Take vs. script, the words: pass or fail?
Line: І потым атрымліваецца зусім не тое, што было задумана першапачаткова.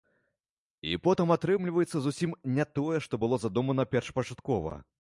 pass